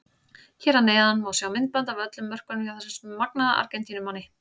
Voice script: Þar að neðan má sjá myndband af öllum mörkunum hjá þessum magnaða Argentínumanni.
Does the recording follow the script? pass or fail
fail